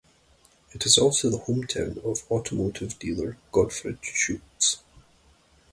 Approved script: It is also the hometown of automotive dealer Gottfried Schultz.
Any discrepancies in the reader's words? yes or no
no